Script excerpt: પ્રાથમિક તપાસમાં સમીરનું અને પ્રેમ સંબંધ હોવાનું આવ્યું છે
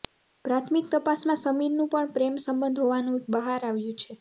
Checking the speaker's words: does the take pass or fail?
fail